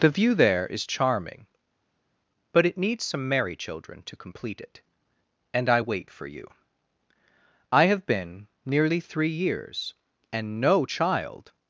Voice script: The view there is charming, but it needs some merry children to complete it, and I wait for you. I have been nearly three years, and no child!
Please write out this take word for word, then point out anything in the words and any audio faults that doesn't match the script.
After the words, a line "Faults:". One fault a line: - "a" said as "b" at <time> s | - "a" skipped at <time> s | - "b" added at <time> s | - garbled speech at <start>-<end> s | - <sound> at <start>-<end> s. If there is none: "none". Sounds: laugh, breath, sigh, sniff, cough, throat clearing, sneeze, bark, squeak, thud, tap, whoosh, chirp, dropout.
The view there is charming, but it needs some merry children to complete it, and I wait for you. I have been nearly three years, and no child!
Faults:
none